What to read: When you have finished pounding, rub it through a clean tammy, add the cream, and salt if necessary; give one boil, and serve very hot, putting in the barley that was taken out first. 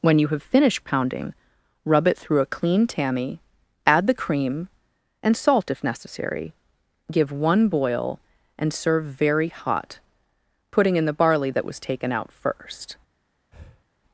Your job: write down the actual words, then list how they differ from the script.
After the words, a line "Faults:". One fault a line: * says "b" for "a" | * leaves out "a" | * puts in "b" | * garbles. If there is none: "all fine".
When you have finished pounding, rub it through a clean tammy, add the cream, and salt if necessary; give one boil, and serve very hot, putting in the barley that was taken out first.
Faults:
all fine